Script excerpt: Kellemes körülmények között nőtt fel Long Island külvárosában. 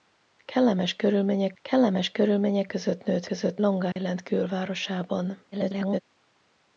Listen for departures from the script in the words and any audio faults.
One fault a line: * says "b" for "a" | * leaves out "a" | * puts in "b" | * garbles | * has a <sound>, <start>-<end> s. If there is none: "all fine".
* puts in "kellemes körülmények"
* says "között" for "fel"
* has a dropout, 3.9-4.0 s
* garbles